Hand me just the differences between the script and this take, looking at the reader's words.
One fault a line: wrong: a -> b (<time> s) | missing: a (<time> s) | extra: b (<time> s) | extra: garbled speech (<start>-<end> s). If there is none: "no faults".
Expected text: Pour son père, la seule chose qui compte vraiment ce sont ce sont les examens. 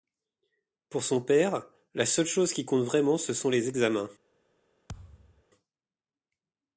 missing: ce sont (3.5 s)